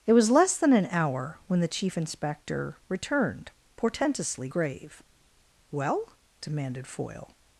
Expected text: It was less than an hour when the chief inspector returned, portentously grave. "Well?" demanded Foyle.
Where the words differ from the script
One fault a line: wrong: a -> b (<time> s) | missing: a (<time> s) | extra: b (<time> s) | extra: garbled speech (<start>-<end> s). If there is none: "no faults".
no faults